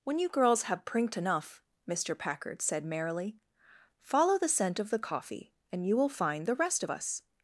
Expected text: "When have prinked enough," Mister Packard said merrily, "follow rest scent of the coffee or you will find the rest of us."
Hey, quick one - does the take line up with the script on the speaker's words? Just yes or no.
no